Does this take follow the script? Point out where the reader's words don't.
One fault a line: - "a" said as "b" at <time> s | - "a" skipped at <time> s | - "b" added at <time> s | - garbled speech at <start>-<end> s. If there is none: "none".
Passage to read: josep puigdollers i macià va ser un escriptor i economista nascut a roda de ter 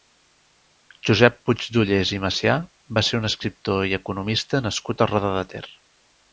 none